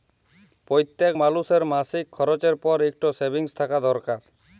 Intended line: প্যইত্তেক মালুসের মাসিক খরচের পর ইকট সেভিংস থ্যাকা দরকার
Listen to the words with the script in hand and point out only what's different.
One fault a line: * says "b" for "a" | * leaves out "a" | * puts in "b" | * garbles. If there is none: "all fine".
all fine